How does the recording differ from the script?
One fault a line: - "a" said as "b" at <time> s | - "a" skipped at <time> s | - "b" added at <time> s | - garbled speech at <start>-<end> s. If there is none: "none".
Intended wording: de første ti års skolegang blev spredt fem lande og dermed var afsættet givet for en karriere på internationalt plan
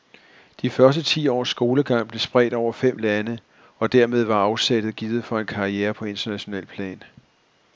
- "over" added at 2.5 s